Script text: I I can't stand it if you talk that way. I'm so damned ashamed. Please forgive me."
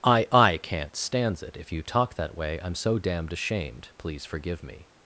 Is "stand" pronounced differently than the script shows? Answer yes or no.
yes